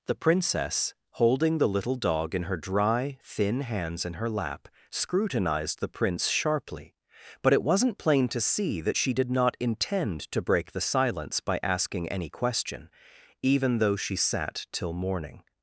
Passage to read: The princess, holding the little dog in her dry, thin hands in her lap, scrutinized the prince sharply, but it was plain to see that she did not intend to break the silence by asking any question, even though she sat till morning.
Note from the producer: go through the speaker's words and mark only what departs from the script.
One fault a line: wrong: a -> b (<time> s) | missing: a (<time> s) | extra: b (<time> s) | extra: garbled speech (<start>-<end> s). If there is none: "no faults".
wrong: was -> wasn't (7.6 s)